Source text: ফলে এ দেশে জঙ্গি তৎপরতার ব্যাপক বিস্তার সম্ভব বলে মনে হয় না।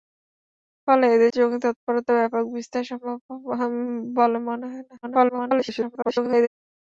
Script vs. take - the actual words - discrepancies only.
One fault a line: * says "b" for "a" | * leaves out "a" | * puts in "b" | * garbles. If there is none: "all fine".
* leaves out "দেশে"
* garbles